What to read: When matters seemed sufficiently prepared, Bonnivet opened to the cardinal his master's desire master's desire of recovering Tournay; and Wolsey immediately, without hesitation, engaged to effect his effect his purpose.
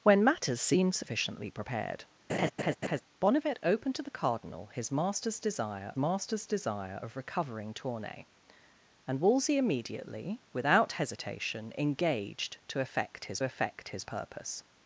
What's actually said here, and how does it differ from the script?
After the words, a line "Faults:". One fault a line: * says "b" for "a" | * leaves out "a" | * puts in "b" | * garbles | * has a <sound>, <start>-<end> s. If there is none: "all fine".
When matters seemed sufficiently prepared, Bonnivet opened to the cardinal his master's desire master's desire of recovering Tournay; and Wolsey immediately, without hesitation, engaged to effect his effect his purpose.
Faults:
* has a laugh, 2.3-3.0 s